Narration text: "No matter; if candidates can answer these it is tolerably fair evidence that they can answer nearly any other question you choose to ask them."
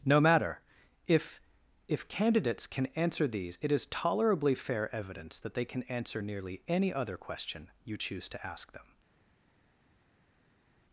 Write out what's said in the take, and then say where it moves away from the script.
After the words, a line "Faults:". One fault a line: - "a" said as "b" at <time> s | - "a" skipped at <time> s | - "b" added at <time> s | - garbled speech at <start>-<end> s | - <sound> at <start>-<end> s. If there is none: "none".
"No matter; if if candidates can answer these it is tolerably fair evidence that they can answer nearly any other question you choose to ask them."
Faults:
- "if" added at 1.9 s